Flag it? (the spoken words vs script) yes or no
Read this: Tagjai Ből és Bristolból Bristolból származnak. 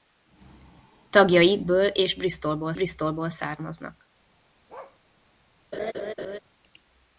no